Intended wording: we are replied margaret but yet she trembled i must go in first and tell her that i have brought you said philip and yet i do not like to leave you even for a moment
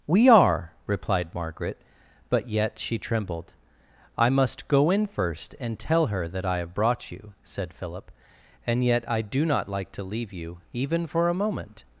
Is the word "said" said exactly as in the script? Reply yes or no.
yes